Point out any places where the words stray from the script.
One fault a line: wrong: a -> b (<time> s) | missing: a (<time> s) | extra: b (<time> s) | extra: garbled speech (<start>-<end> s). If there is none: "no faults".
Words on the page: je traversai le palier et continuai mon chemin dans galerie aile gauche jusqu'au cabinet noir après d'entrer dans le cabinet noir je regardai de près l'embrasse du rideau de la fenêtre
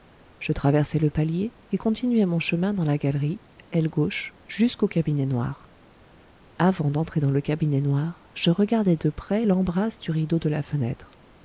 extra: la (2.8 s)
wrong: après -> avant (6.6 s)